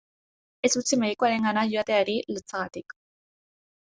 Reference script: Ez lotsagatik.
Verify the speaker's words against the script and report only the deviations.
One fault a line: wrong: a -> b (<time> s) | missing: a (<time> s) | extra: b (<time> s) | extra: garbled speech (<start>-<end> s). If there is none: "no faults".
extra: utzi medikuarengana joateari (0.8 s)